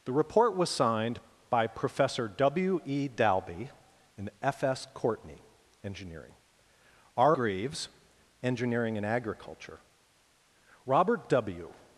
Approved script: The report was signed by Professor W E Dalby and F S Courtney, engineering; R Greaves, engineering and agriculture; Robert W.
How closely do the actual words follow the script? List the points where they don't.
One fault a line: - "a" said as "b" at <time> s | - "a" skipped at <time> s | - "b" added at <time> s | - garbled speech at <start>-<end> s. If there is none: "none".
none